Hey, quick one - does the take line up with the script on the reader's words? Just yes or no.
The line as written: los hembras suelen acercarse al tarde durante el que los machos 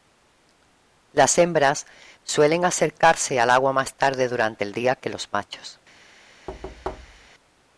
no